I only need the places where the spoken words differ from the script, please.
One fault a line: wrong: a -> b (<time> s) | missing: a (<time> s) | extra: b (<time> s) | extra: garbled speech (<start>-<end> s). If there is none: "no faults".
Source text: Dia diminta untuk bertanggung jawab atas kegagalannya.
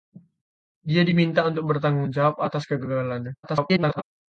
extra: garbled speech (3.4-4.0 s)